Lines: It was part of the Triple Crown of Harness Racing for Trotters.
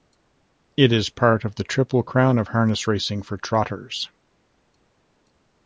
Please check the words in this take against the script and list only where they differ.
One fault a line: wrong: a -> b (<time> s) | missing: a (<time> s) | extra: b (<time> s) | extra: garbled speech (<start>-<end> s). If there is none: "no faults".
wrong: was -> is (0.9 s)